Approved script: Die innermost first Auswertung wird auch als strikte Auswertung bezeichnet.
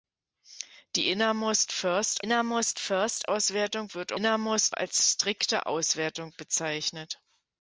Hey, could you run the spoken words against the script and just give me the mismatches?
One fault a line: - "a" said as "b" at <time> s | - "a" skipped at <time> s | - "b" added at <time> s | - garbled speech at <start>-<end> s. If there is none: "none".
- "innermost first" added at 2.2 s
- "auch" said as "innermost" at 4.1 s